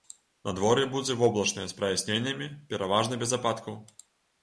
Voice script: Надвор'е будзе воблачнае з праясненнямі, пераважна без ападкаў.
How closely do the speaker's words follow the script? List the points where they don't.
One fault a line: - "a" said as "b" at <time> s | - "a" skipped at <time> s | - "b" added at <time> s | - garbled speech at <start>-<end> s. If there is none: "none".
none